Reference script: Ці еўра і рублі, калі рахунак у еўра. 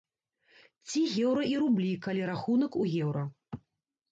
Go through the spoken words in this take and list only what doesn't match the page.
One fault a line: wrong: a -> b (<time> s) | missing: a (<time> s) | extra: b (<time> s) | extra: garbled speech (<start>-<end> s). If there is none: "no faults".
no faults